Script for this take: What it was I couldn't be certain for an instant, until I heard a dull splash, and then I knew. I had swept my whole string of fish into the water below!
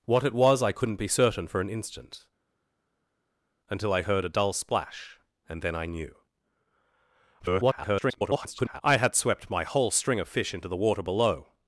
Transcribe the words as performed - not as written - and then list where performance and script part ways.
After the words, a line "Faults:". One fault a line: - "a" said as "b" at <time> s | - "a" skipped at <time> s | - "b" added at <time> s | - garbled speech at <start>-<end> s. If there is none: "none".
What it was I couldn't be certain for an instant, until I heard a dull splash, and then I knew. [garbled] I had swept my whole string of fish into the water below!
Faults:
- garbled speech at 7.4-8.8 s